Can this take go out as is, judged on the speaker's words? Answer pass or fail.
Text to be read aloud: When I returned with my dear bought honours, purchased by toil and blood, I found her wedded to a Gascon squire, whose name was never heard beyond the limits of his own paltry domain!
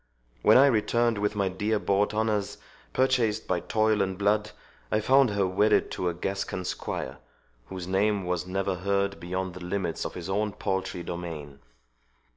pass